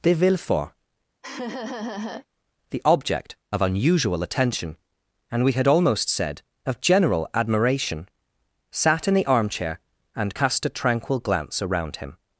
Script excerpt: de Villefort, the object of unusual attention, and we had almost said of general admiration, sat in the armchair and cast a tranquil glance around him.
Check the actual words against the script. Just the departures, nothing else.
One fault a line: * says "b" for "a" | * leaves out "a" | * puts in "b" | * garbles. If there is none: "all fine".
all fine